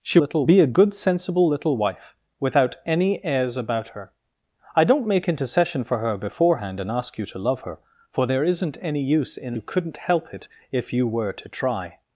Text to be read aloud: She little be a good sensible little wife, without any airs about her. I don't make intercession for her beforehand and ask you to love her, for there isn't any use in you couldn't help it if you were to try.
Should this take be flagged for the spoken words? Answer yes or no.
no